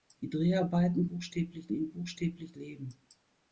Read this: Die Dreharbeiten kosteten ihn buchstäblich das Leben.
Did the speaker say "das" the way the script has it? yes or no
no